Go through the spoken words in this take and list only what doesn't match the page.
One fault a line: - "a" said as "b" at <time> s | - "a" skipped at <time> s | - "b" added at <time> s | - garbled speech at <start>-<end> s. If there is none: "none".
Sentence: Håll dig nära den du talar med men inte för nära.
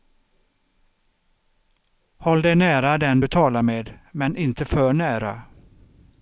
none